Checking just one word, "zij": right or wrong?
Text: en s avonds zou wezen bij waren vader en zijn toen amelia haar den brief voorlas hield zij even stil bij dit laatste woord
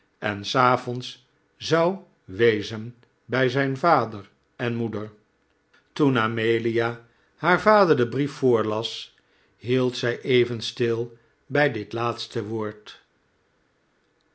right